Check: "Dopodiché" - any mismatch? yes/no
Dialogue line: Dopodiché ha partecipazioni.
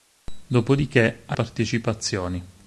no